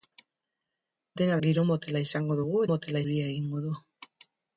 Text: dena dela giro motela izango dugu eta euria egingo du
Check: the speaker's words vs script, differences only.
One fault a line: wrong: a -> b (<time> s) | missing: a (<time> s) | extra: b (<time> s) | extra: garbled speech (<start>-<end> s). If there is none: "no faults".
missing: dela (1.4 s)
wrong: eta -> motela (2.7 s)